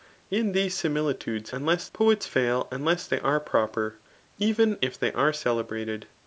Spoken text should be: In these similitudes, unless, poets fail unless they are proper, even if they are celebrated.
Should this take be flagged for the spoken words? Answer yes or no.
no